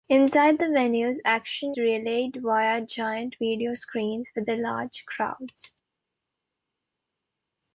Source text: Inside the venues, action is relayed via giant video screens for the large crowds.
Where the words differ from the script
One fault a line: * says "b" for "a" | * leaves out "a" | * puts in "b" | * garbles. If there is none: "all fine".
* leaves out "is"